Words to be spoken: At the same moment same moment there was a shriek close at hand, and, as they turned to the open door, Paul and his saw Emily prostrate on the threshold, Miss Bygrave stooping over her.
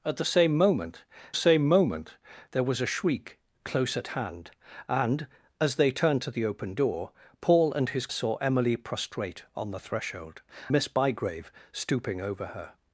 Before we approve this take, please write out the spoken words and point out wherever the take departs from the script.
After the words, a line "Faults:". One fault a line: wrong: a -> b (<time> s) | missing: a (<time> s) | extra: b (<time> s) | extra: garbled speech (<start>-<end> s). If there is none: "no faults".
At the same moment same moment there was a shriek close at hand, and, as they turned to the open door, Paul and his saw Emily prostrate on the threshold, Miss Bygrave stooping over her.
Faults:
no faults